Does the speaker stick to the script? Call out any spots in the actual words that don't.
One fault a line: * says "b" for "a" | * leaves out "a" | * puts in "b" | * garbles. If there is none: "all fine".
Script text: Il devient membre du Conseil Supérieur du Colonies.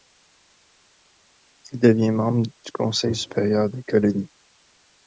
* says "des" for "du"